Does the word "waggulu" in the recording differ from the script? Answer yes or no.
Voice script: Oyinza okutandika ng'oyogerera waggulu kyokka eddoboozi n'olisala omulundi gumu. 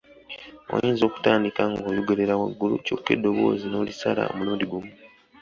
no